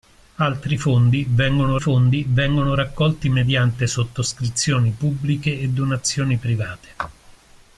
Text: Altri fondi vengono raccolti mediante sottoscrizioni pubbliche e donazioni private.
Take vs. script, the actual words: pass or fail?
fail